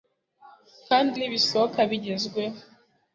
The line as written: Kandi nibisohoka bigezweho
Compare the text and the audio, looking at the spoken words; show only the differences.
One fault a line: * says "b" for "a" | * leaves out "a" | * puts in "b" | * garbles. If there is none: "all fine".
all fine